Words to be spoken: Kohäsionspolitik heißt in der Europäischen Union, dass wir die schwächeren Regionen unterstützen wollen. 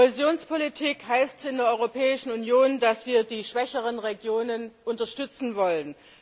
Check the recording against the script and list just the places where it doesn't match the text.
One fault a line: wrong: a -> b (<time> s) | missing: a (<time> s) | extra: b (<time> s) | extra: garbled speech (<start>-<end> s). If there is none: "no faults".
no faults